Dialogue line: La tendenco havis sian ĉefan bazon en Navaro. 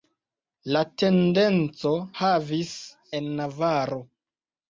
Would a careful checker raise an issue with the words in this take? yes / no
yes